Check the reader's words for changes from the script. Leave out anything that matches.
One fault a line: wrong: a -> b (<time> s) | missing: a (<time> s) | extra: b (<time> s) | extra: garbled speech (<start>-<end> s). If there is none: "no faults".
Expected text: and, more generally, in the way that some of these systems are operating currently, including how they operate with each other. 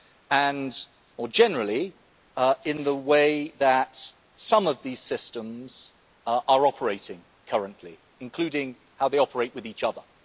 no faults